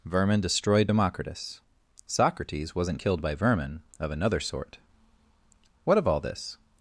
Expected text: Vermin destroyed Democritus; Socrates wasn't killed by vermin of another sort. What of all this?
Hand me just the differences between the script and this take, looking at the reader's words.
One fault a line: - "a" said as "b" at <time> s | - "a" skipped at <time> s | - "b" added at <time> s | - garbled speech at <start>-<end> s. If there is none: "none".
none